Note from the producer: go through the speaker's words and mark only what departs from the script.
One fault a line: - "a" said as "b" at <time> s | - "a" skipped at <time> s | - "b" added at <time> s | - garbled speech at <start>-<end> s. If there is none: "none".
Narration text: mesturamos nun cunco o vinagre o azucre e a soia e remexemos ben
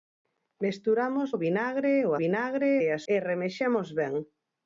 - "nun cunco" skipped at 1.3 s
- "azucre" said as "vinagre" at 2.2 s
- "soia" skipped at 3.0 s